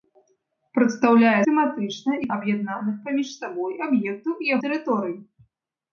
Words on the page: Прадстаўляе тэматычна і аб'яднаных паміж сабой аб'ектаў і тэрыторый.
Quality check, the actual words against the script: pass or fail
pass